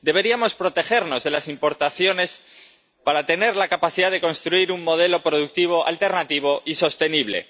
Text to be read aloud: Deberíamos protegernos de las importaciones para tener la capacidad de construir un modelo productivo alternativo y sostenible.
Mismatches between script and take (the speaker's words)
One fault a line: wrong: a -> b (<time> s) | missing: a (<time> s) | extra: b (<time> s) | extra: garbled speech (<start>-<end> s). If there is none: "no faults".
no faults